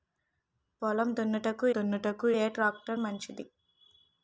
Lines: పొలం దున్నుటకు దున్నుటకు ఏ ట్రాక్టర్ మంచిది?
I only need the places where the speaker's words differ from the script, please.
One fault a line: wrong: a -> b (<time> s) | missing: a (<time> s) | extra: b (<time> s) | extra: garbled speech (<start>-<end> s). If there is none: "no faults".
no faults